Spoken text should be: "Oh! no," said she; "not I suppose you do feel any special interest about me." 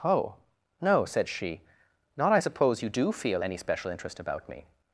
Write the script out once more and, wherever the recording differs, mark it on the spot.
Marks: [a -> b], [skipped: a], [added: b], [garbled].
"Oh! no," said she; "not I suppose you do feel any special interest about me."